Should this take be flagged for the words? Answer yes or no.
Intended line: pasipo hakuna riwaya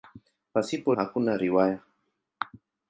no